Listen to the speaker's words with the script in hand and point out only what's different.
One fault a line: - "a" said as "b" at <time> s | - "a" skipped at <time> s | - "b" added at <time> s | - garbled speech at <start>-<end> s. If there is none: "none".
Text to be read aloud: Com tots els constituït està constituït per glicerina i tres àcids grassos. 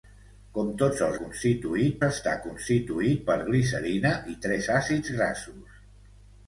none